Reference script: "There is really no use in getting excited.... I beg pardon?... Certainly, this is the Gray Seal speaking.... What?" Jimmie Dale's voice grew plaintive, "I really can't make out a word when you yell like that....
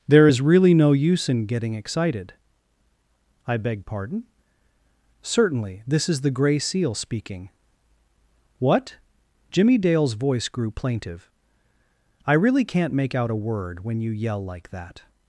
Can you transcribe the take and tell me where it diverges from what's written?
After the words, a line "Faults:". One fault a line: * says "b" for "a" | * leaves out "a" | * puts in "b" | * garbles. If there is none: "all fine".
"There is really no use in getting excited.... I beg pardon?... Certainly, this is the Gray Seal speaking.... What?" Jimmie Dale's voice grew plaintive, "I really can't make out a word when you yell like that....
Faults:
all fine